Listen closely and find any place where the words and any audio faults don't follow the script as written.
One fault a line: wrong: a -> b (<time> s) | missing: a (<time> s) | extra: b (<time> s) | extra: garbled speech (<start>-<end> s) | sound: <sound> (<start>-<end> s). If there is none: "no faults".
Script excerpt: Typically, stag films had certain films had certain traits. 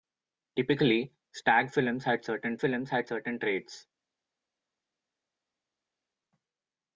no faults